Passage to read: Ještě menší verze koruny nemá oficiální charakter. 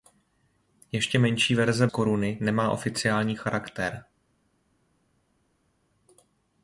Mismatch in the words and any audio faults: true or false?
false